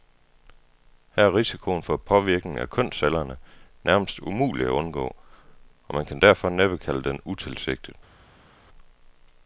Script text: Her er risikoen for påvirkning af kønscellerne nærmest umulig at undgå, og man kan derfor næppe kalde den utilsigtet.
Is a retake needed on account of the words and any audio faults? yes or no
no